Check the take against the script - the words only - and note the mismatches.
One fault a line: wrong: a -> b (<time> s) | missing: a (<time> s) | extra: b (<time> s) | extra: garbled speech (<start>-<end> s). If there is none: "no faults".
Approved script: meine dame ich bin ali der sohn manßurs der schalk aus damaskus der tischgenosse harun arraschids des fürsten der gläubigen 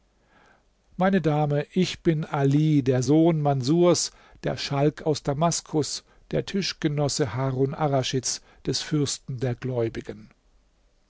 no faults